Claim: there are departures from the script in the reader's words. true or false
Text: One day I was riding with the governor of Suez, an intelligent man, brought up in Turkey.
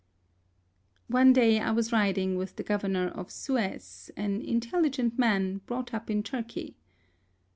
false